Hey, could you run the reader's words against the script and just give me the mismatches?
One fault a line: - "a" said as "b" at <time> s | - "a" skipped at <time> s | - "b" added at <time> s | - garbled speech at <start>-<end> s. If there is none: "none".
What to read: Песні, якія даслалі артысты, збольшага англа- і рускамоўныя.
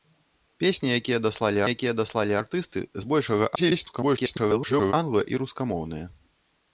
- "якія даслалі" added at 1.7 s
- garbled speech at 3.6-4.9 s